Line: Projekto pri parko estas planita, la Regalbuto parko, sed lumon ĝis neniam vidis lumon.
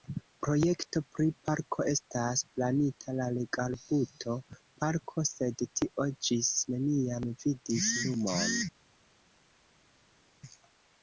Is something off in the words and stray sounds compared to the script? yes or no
yes